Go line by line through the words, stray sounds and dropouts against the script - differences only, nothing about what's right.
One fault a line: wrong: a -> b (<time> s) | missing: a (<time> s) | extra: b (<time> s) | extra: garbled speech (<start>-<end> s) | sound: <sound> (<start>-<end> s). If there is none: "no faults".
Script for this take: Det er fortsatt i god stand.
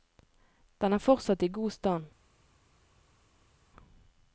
wrong: Det -> Den (0.8 s)